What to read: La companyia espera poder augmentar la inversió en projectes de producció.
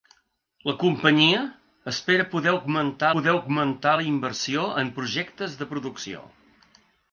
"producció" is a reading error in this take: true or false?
false